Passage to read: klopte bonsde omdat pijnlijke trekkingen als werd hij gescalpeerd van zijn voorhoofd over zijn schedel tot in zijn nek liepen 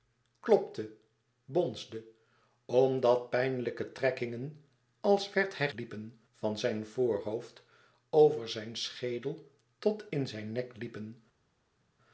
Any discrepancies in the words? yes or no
yes